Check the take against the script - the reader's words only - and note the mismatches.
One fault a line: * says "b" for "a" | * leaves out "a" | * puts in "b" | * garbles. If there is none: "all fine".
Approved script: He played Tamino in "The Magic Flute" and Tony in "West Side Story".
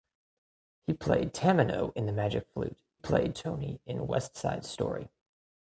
* says "played" for "and"